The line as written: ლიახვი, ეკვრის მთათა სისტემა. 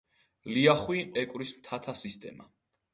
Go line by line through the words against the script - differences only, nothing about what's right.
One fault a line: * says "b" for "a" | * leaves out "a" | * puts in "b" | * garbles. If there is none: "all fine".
all fine